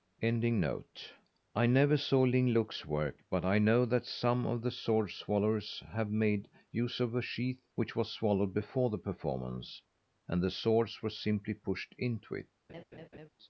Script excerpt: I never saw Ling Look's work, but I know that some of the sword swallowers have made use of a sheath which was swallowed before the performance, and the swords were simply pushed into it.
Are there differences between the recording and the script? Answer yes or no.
no